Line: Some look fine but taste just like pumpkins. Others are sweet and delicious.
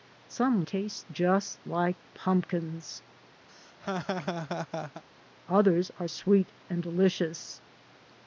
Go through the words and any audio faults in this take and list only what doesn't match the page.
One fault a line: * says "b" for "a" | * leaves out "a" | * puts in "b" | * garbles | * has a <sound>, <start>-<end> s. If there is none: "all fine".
* leaves out "look fine but"
* has a laugh, 3.5-5.0 s